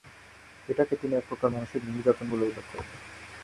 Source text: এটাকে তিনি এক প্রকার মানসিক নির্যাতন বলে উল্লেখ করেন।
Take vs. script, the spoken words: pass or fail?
pass